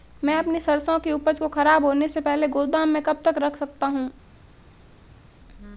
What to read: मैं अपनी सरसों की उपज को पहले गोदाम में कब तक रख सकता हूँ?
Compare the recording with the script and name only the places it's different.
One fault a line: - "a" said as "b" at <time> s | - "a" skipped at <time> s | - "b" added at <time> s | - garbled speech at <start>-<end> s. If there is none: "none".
- "खराब होने से" added at 1.5 s